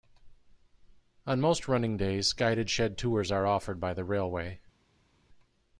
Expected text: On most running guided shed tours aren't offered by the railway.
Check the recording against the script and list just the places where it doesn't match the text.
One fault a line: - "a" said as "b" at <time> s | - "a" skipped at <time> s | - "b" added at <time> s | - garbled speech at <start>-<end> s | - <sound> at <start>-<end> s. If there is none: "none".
- "days" added at 1.9 s
- "aren't" said as "are" at 3.3 s